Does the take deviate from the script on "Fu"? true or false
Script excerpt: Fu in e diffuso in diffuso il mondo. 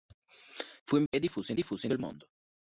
false